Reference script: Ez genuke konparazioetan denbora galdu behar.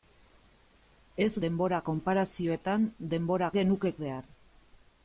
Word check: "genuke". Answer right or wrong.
wrong